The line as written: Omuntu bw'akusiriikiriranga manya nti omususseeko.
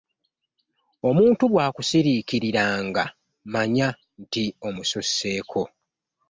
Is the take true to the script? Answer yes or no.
yes